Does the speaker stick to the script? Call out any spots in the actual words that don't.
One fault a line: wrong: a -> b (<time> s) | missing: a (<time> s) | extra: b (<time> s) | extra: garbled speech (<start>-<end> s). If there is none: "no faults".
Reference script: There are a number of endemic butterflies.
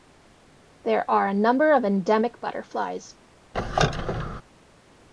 no faults